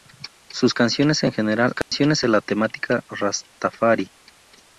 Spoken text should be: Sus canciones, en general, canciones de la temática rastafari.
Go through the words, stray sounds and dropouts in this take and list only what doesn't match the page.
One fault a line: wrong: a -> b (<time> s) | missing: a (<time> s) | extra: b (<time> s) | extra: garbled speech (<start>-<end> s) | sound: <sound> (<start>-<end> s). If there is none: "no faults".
sound: dropout (1.8-1.9 s)